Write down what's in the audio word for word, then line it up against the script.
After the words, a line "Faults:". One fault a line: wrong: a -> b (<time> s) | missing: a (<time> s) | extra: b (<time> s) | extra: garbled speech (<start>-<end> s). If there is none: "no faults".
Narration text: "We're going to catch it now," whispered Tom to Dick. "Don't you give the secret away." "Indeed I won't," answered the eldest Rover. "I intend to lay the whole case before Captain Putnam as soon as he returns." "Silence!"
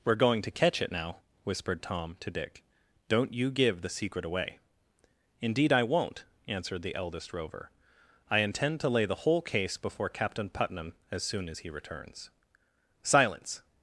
"We're going to catch it now," whispered Tom to Dick. "Don't you give the secret away." "Indeed I won't," answered the eldest Rover. "I intend to lay the whole case before Captain Putnam as soon as he returns." "Silence!"
Faults:
no faults